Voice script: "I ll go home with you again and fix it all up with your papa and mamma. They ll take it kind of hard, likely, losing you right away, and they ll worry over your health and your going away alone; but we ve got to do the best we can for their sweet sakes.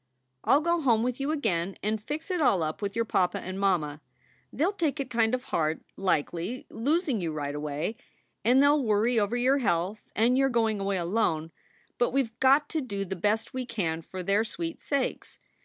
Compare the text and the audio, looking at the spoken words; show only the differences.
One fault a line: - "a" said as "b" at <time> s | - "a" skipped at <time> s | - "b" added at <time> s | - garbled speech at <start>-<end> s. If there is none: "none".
none